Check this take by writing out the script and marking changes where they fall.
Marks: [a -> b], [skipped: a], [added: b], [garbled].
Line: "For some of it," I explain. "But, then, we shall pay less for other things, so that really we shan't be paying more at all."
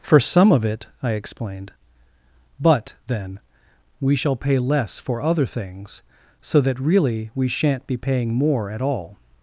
"For some of it," I [explain. -> explained] "But, then, we shall pay less for other things, so that really we shan't be paying more at all."